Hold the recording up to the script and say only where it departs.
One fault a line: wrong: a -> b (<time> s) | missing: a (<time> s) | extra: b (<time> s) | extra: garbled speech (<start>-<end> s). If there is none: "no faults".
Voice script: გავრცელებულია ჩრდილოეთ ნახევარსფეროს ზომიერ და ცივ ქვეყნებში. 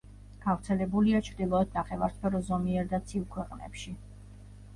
no faults